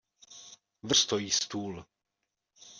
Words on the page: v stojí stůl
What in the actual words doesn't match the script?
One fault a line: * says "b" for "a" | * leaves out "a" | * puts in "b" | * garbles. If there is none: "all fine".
all fine